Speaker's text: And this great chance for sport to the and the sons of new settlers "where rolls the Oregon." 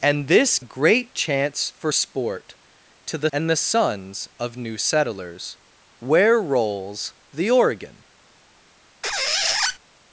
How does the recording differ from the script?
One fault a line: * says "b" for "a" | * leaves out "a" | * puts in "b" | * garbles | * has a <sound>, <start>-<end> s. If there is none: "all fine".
* has a squeak, 9.0-9.8 s